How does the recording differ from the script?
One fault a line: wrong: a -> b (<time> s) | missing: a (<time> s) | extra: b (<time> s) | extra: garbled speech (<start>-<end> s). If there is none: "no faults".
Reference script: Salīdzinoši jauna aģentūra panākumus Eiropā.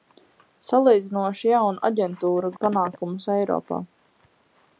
no faults